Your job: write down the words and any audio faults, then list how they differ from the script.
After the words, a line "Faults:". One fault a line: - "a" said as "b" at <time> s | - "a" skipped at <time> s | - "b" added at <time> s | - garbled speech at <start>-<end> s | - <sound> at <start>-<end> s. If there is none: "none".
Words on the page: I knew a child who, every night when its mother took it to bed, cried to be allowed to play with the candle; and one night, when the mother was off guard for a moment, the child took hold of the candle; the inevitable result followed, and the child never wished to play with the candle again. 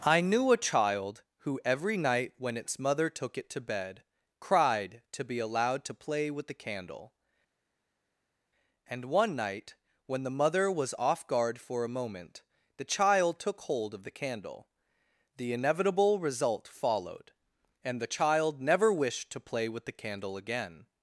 I knew a child who, every night when its mother took it to bed, cried to be allowed to play with the candle; and one night, when the mother was off guard for a moment, the child took hold of the candle; the inevitable result followed, and the child never wished to play with the candle again.
Faults:
none